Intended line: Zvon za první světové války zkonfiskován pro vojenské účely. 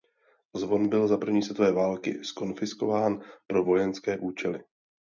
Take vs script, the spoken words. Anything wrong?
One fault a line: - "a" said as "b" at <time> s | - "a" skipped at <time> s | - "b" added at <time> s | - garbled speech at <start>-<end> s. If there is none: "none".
- "byl" added at 0.9 s